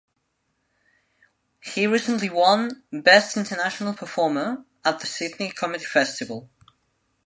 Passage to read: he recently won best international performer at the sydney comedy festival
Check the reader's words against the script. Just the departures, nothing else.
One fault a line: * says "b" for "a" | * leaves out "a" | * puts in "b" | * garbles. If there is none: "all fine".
all fine